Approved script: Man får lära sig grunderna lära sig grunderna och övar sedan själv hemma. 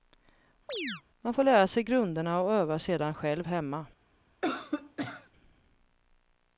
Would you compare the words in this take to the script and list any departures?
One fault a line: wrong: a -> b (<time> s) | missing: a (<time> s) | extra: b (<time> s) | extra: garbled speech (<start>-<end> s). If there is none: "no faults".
missing: lära sig grunderna (2.4 s)